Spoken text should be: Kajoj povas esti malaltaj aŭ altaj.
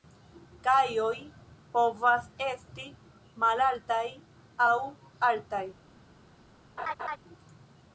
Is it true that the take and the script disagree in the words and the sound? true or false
true